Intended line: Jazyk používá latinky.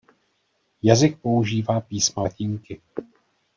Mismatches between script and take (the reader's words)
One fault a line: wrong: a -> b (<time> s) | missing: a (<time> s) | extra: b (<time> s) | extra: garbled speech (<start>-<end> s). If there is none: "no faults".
extra: písma (1.8 s)